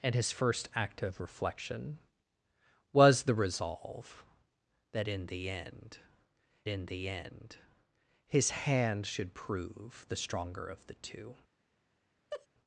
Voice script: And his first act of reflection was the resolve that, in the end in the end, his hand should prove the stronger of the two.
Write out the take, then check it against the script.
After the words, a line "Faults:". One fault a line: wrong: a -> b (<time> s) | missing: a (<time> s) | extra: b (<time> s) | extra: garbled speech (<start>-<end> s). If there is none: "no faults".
And his first act of reflection was the resolve that, in the end in the end, his hand should prove the stronger of the two.
Faults:
no faults